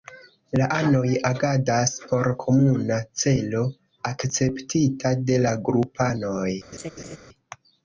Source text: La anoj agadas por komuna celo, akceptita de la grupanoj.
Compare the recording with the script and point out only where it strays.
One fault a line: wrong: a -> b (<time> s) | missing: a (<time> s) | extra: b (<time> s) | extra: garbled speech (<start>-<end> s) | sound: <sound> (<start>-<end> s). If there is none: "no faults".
sound: laugh (6.7-7.2 s)